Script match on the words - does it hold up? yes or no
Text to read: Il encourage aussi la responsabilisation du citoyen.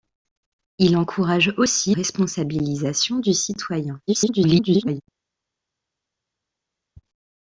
no